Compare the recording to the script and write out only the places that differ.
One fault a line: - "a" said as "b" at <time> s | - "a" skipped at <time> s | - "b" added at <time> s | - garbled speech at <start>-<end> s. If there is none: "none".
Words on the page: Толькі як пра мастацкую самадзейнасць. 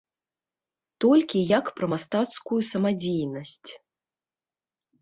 none